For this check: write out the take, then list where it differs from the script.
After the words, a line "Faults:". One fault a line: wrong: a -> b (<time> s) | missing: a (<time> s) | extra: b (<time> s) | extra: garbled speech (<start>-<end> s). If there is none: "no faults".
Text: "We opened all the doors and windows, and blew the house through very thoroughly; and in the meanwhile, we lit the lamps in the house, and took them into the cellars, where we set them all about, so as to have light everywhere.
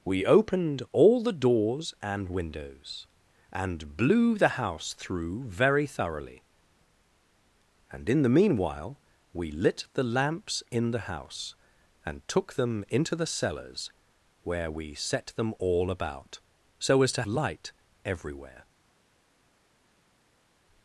"We opened all the doors and windows, and blew the house through very thoroughly; and in the meanwhile, we lit the lamps in the house, and took them into the cellars, where we set them all about, so as to light everywhere.
Faults:
missing: have (17.2 s)